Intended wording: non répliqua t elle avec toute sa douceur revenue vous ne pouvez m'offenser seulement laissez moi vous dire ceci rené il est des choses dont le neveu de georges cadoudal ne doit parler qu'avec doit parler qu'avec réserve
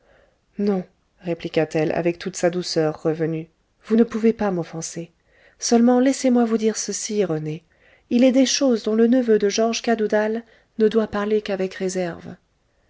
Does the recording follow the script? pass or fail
fail